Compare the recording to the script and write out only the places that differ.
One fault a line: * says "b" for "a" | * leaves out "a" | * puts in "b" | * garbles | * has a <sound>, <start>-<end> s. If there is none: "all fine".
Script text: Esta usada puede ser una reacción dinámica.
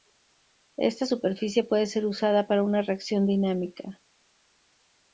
* says "superficie" for "usada"
* puts in "usada para"